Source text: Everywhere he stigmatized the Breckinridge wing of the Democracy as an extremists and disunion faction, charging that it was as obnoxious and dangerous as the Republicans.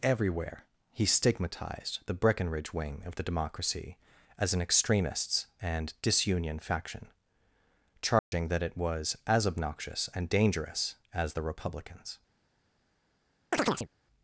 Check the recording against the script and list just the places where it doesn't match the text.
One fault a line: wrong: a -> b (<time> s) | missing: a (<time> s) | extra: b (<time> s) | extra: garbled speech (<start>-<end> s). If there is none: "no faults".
no faults